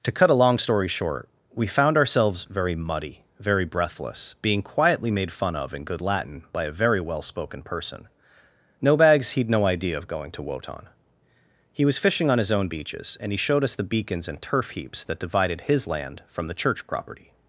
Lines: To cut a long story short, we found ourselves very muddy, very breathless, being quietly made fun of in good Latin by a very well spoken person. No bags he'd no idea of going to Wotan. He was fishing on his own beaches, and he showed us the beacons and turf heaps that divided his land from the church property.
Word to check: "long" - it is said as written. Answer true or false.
true